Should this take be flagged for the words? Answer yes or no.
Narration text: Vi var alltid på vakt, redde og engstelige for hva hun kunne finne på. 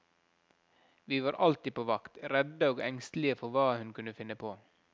no